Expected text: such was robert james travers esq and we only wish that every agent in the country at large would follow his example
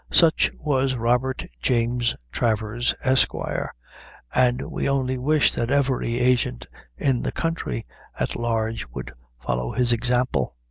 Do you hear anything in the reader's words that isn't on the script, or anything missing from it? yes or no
no